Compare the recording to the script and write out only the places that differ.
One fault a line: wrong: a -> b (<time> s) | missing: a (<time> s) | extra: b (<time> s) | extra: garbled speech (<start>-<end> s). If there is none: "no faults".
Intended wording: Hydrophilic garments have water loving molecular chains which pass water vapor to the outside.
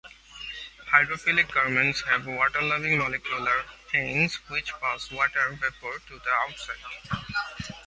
no faults